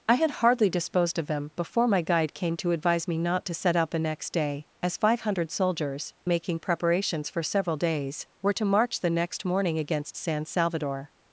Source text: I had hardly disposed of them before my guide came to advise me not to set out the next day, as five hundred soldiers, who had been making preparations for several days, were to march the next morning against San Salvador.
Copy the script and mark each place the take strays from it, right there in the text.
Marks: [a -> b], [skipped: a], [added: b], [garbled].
I had hardly disposed of them before my guide came to advise me not to set out the next day, as five hundred soldiers, [skipped: who had been] making preparations for several days, were to march the next morning against San Salvador.